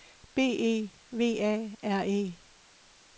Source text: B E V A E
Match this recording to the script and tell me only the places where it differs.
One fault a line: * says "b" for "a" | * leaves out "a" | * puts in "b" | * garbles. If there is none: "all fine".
* puts in "R"